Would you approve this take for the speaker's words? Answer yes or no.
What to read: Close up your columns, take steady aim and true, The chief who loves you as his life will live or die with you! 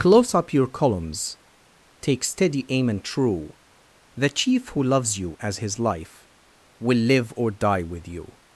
yes